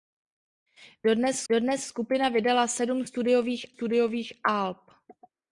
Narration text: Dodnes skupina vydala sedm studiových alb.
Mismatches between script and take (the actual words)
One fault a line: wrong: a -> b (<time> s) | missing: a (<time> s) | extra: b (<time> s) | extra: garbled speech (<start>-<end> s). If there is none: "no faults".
extra: dodnes (1.5 s)
extra: studiových (3.7 s)